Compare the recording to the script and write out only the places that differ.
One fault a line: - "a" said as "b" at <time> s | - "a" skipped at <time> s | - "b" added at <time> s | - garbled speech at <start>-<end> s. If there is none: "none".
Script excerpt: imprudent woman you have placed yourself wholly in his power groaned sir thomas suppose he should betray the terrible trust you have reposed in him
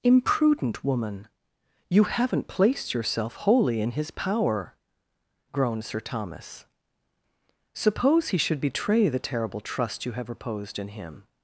- "have" said as "haven't" at 2.0 s